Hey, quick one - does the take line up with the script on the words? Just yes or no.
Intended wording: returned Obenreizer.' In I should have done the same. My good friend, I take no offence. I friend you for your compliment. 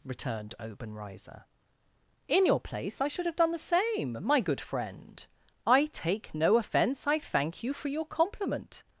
no